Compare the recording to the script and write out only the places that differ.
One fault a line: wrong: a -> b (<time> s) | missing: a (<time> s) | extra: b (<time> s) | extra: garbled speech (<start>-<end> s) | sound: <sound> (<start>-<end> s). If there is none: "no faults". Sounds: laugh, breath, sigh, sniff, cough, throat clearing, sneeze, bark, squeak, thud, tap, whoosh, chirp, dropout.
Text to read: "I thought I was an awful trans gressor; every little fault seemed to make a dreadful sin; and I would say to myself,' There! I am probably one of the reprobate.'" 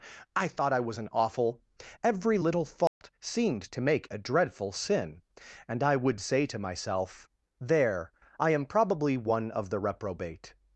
missing: trans gressor (1.6 s)
sound: dropout (2.9-3.0 s)